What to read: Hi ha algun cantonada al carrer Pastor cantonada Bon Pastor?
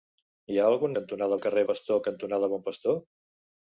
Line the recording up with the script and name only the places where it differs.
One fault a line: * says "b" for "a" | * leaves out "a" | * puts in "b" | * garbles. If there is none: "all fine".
all fine